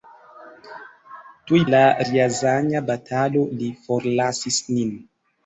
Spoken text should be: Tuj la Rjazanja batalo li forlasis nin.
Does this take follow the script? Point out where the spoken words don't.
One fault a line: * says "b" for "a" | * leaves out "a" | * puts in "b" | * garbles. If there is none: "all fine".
all fine